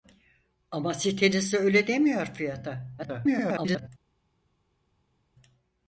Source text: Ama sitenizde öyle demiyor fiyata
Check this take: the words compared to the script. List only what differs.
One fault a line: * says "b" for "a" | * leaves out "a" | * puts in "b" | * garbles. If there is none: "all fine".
* garbles